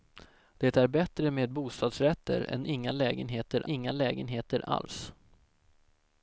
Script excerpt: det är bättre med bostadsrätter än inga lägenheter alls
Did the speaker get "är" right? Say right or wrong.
right